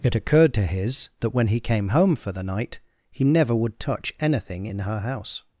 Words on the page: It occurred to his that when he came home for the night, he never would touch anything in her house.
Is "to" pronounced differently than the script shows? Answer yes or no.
no